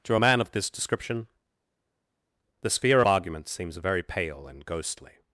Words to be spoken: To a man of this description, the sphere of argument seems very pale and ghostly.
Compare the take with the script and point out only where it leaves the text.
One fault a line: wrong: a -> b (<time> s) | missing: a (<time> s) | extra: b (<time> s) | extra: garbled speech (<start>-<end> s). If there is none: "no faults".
no faults